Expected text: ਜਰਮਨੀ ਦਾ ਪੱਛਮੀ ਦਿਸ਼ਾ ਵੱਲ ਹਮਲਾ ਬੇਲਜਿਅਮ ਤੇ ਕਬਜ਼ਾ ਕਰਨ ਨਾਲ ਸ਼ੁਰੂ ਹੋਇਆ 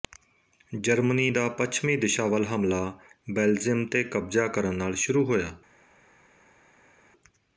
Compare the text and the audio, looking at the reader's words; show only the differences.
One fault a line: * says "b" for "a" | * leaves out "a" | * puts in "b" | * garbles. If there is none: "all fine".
all fine